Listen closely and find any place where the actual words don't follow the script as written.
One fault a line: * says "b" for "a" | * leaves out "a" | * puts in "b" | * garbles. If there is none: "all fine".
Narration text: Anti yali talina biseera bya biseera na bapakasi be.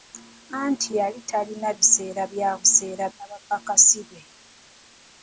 all fine